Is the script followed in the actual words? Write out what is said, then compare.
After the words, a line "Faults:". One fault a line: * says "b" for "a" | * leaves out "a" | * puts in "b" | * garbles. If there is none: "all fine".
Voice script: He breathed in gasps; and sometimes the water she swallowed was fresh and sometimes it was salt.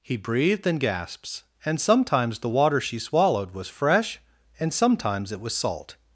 He breathed in gasps; and sometimes the water she swallowed was fresh and sometimes it was salt.
Faults:
all fine